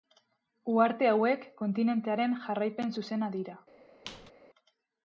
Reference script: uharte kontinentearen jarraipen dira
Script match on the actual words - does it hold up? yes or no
no